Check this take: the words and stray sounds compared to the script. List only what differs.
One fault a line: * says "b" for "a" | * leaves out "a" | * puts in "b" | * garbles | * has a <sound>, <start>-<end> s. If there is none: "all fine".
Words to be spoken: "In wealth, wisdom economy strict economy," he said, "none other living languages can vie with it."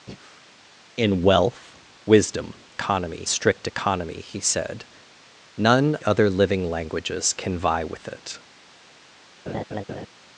* has a breath, 0.1-0.5 s
* has a laugh, 9.5-10.1 s